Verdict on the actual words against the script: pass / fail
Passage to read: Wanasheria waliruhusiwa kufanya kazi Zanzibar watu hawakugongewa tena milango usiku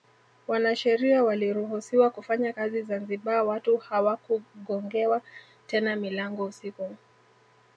pass